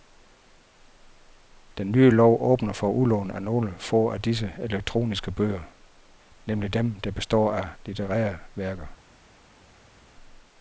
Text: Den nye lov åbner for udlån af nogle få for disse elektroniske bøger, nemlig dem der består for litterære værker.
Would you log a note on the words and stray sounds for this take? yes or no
yes